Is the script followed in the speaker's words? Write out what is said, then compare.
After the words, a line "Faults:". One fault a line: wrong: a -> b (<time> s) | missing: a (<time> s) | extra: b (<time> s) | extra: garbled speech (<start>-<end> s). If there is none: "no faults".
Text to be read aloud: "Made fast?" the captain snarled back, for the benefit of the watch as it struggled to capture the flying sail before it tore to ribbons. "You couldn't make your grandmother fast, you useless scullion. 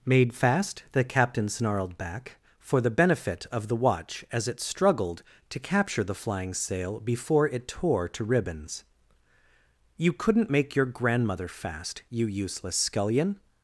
"Made fast?" the captain snarled back, for the benefit of the watch as it struggled to capture the flying sail before it tore to ribbons. "You couldn't make your grandmother fast, you useless scullion.
Faults:
no faults